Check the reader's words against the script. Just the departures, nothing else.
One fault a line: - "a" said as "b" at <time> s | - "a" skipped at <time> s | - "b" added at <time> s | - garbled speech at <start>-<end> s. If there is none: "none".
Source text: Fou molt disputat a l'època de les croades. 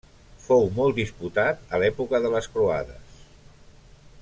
none